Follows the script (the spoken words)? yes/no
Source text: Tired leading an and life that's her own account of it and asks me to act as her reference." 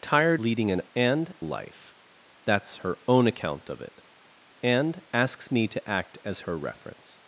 yes